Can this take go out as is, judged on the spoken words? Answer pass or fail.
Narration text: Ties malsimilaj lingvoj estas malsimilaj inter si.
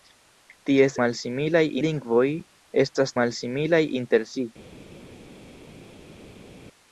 pass